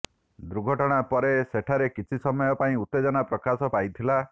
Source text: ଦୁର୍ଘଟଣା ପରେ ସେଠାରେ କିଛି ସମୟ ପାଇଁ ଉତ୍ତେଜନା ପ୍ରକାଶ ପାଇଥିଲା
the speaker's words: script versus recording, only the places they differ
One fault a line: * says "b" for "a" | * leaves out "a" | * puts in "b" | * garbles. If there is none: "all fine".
all fine